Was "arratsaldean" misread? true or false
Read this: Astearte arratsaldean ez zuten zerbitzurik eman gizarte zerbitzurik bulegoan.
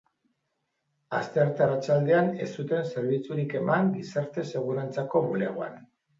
false